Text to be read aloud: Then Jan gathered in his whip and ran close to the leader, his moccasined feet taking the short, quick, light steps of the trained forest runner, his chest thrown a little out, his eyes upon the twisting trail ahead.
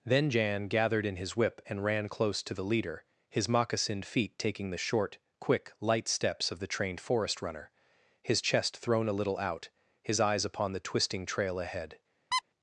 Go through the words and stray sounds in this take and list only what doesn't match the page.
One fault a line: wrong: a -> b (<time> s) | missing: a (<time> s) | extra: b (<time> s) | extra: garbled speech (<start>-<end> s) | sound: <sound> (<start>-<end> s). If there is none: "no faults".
sound: squeak (12.3-12.4 s)